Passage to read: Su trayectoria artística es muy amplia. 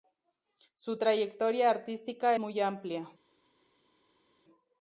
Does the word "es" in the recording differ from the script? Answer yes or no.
yes